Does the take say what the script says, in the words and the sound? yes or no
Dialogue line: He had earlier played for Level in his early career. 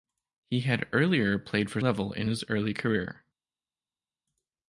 yes